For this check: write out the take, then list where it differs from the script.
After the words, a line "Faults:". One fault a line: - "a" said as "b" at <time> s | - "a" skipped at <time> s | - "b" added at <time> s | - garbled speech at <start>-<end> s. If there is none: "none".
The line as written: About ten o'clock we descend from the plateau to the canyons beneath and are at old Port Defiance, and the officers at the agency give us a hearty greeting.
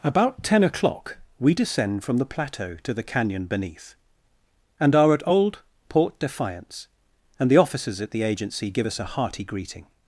About ten o'clock we descend from the plateau to the canyon beneath and are at old Port Defiance, and the officers at the agency give us a hearty greeting.
Faults:
- "canyons" said as "canyon" at 3.0 s